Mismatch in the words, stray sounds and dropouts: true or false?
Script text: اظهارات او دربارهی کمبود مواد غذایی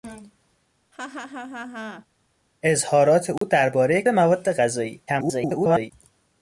true